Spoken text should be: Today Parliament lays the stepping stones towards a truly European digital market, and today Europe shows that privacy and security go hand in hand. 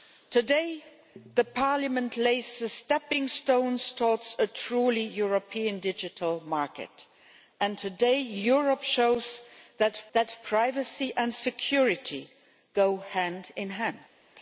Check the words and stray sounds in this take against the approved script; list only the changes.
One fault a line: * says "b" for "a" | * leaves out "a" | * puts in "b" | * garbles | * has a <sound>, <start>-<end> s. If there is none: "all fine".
* puts in "that"